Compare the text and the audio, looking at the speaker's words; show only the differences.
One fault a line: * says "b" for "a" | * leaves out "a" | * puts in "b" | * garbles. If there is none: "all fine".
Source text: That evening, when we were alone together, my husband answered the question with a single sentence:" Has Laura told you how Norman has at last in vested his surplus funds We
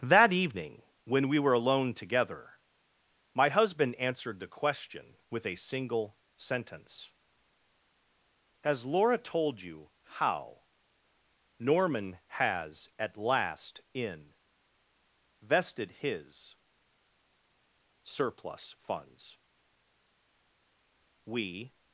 all fine